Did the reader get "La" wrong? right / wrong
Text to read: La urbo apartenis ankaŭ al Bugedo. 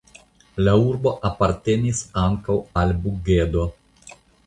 right